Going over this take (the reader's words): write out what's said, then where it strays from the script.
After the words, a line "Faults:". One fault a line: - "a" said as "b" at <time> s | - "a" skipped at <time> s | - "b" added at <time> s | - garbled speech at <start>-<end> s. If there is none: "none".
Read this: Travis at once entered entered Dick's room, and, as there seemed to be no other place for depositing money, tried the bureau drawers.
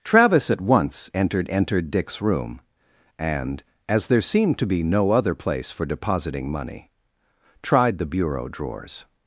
Travis at once entered entered Dick's room, and, as there seemed to be no other place for depositing money, tried the bureau drawers.
Faults:
none